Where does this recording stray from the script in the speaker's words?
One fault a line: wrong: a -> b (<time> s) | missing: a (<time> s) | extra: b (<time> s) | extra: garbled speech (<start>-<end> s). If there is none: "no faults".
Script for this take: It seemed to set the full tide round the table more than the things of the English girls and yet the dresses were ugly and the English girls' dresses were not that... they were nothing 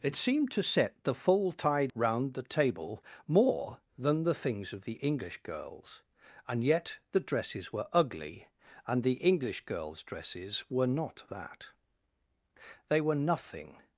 no faults